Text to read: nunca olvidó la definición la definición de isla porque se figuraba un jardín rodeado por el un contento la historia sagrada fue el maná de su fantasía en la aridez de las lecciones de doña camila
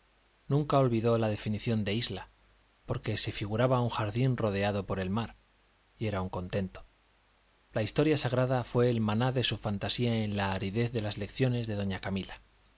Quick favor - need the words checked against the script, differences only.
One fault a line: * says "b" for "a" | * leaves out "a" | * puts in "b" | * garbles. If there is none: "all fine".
* leaves out "la definición"
* puts in "mar y era"